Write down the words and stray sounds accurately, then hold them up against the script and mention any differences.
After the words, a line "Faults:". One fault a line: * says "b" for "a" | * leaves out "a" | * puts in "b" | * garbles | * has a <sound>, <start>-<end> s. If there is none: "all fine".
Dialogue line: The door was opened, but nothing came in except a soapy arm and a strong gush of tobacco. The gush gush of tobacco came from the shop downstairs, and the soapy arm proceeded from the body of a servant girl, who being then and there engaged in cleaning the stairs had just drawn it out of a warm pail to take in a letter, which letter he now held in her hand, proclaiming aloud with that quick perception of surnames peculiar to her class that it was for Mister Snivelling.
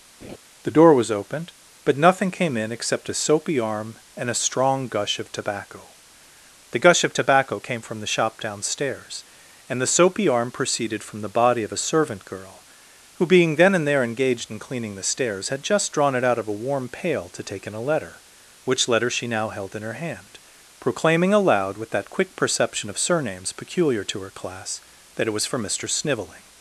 The door was opened, but nothing came in except a soapy arm and a strong gush of tobacco. The gush of tobacco came from the shop downstairs, and the soapy arm proceeded from the body of a servant girl, who being then and there engaged in cleaning the stairs had just drawn it out of a warm pail to take in a letter, which letter she now held in her hand, proclaiming aloud with that quick perception of surnames peculiar to her class that it was for Mister Snivelling.
Faults:
* has a laugh, 0.2-0.4 s
* leaves out "gush"
* says "she" for "he"